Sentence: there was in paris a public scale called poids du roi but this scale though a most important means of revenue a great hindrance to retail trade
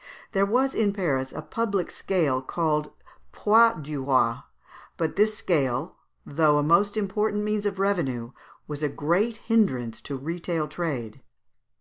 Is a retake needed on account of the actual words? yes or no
yes